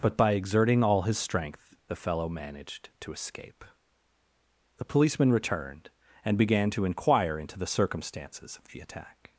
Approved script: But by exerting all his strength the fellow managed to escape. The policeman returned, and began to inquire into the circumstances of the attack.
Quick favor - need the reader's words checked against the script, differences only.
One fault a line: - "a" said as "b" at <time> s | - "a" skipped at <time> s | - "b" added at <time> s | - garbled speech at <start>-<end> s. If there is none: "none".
none